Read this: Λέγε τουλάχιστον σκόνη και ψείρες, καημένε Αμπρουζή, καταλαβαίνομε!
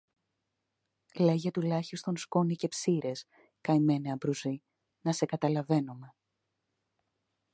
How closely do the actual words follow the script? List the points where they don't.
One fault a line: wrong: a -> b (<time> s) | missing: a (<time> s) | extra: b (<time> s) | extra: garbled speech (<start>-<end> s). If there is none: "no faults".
extra: να σε (5.0 s)